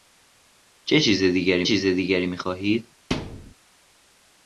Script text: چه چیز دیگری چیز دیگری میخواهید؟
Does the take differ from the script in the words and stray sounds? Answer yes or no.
yes